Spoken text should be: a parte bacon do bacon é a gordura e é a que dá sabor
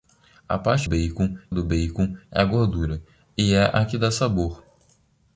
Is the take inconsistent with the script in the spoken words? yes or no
no